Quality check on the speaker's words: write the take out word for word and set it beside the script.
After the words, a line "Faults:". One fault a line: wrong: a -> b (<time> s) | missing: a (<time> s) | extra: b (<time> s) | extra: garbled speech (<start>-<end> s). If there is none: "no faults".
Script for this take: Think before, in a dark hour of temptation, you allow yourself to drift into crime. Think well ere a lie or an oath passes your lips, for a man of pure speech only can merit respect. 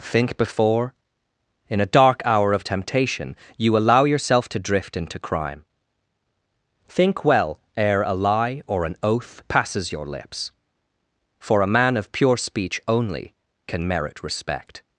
Think before, in a dark hour of temptation, you allow yourself to drift into crime. Think well ere a lie or an oath passes your lips, for a man of pure speech only can merit respect.
Faults:
no faults